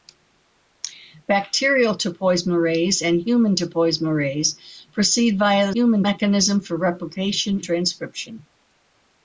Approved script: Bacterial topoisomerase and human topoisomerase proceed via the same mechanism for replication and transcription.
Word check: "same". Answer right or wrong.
wrong